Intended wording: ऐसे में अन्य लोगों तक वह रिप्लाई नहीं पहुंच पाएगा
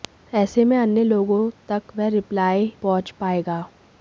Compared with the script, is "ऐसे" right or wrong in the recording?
right